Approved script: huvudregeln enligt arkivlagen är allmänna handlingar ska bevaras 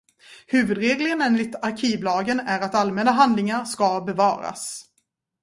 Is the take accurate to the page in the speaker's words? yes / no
no